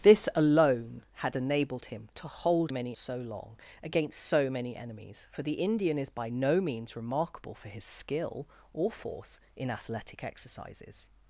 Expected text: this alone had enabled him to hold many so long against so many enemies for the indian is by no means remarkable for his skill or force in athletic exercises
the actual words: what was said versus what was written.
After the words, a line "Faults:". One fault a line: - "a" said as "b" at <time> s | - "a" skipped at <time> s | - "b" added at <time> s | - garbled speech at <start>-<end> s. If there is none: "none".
this alone had enabled him to hold many so long against so many enemies for the indian is by no means remarkable for his skill or force in athletic exercises
Faults:
none